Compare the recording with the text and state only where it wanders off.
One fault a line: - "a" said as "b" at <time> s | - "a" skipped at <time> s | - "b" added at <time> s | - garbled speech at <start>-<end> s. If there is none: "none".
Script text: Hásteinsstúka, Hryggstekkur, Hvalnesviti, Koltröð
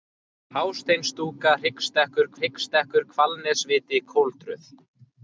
- "Hryggstekkur" added at 2.4 s